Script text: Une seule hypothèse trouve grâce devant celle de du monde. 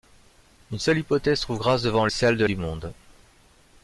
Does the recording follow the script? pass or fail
pass